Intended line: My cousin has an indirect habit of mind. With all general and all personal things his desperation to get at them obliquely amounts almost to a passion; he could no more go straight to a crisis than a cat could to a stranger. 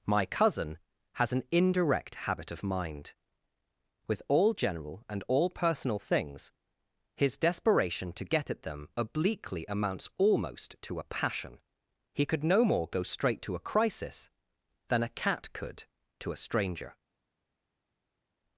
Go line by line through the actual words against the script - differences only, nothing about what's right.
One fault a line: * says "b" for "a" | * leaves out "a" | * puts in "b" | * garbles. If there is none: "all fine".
all fine